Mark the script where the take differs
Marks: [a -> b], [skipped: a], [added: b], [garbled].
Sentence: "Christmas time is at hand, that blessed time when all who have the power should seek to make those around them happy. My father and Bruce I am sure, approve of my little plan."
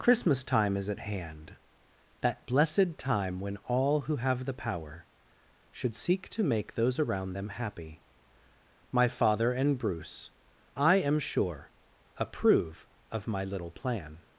"Christmas time is at hand, that blessed time when all who have the power should seek to make those around them happy. My father and Bruce I am sure, approve of my little plan."